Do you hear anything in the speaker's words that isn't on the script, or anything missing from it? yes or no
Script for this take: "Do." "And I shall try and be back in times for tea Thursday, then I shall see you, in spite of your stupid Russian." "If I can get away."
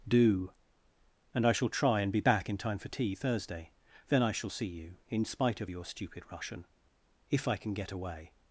yes